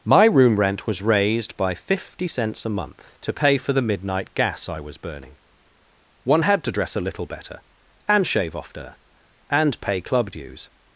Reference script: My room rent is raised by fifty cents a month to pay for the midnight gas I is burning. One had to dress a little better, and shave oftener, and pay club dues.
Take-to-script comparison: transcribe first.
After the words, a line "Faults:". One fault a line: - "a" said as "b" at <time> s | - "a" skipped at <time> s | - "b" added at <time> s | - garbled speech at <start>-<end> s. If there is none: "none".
My room rent was raised by fifty cents a month to pay for the midnight gas I was burning. One had to dress a little better, and shave oftener, and pay club dues.
Faults:
- "is" said as "was" at 0.9 s
- "is" said as "was" at 4.8 s